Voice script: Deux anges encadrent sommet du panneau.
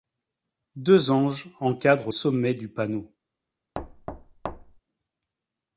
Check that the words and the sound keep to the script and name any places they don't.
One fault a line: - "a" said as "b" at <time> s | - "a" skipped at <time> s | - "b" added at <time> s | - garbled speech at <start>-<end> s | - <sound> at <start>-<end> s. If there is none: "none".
- thud at 3.7-4.8 s